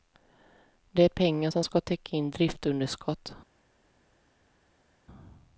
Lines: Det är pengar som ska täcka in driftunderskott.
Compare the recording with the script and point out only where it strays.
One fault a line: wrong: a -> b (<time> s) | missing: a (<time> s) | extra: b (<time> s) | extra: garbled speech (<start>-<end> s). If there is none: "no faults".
no faults